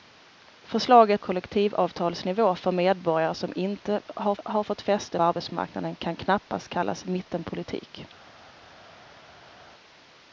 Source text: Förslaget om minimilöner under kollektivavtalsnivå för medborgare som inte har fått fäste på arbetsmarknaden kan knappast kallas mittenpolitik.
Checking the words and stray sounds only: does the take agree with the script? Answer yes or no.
no